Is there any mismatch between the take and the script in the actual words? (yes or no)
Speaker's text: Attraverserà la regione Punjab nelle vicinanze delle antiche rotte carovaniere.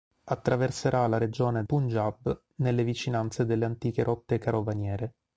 no